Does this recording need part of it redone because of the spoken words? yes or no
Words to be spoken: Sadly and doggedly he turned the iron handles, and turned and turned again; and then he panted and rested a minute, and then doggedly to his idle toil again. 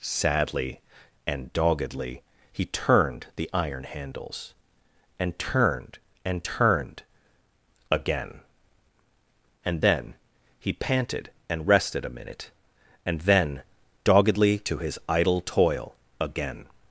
no